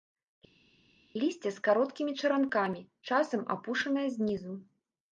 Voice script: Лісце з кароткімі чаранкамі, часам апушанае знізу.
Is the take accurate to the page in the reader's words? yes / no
yes